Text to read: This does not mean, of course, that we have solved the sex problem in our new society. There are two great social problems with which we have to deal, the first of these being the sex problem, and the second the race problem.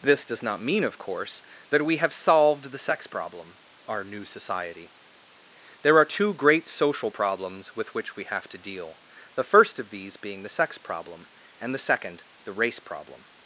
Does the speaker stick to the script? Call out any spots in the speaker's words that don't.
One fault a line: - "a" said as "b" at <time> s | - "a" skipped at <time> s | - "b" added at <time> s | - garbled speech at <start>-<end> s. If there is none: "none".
- "in" skipped at 3.6 s